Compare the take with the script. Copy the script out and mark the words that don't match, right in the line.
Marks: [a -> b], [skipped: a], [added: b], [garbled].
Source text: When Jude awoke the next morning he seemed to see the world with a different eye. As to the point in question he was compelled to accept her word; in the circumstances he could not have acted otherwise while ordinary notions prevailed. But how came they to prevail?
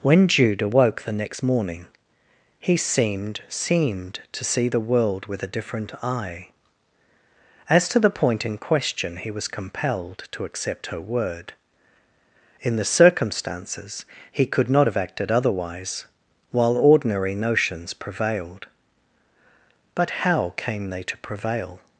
When Jude awoke the next morning he seemed [added: seemed] to see the world with a different eye. As to the point in question he was compelled to accept her word; in the circumstances he could not have acted otherwise while ordinary notions prevailed. But how came they to prevail?